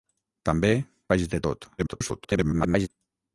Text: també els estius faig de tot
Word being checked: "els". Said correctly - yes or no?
no